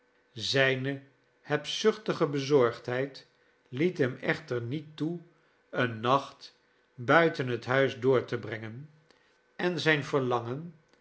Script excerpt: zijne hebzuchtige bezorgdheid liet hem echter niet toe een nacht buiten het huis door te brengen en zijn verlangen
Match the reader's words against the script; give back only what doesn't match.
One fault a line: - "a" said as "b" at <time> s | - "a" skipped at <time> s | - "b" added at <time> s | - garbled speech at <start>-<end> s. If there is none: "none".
none